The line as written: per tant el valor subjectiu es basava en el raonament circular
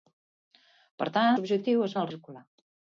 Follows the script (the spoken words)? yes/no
no